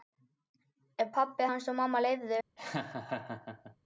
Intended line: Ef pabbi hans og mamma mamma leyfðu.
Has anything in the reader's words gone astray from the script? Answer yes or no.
yes